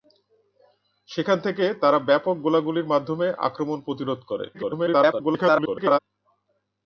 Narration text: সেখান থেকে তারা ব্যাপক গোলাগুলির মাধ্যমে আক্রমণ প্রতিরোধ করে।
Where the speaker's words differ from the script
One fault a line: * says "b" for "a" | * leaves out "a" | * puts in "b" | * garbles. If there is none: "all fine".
* garbles